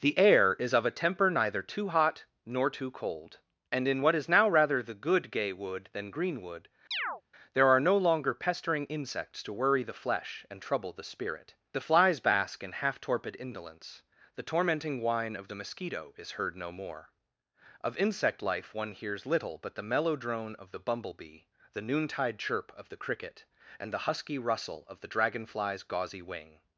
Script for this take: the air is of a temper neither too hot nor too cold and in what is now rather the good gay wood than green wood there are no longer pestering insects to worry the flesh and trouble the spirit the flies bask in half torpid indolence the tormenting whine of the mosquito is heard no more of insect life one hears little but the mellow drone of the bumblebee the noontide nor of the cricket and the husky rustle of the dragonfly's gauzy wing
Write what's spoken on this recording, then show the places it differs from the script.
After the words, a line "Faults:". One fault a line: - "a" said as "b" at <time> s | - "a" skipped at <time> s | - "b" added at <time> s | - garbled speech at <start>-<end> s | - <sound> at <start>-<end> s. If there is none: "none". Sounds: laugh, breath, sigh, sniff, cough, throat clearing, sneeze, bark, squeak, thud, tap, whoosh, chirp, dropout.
the air is of a temper neither too hot nor too cold and in what is now rather the good gay wood than green wood there are no longer pestering insects to worry the flesh and trouble the spirit the flies bask in half torpid indolence the tormenting whine of the mosquito is heard no more of insect life one hears little but the mellow drone of the bumblebee the noontide chirp of the cricket and the husky rustle of the dragonfly's gauzy wing
Faults:
- chirp at 6.9-7.2 s
- "nor" said as "chirp" at 22.4 s